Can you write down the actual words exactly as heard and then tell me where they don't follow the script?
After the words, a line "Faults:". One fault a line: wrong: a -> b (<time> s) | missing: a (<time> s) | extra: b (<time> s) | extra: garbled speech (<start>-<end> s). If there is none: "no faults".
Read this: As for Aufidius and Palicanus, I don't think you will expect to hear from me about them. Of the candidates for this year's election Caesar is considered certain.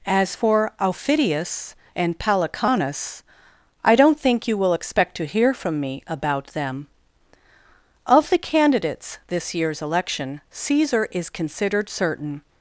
As for Aufidius and Palicanus, I don't think you will expect to hear from me about them. Of the candidates this year's election Caesar is considered certain.
Faults:
missing: for (9.2 s)